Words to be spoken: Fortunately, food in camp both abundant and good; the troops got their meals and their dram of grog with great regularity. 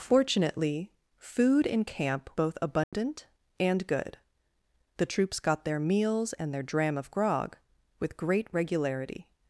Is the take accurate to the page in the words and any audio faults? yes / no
no